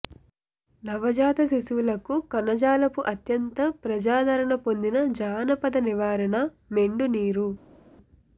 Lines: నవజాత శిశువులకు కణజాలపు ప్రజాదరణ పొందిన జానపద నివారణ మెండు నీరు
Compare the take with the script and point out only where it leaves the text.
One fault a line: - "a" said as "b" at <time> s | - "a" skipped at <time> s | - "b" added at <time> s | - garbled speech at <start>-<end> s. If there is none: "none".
- "అత్యంత" added at 3.1 s